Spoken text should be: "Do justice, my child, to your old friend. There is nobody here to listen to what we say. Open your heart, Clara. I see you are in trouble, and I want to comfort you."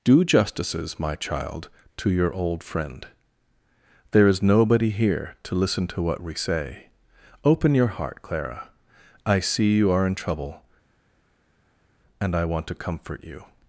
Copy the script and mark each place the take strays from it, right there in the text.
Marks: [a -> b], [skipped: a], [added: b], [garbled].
"Do [justice, -> justices] my child, to your old friend. There is nobody here to listen to what we say. Open your heart, Clara. I see you are in trouble, and I want to comfort you."